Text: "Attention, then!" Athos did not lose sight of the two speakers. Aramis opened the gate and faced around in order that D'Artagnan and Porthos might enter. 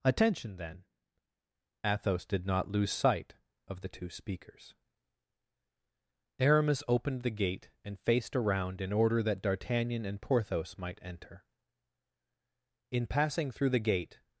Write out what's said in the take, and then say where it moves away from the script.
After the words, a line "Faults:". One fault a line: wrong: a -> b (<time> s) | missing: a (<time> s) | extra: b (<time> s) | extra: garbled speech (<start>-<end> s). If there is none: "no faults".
"Attention, then!" Athos did not lose sight of the two speakers. Aramis opened the gate and faced around in order that D'Artagnan and Porthos might enter. In passing through the gate
Faults:
extra: In passing through the gate (12.9 s)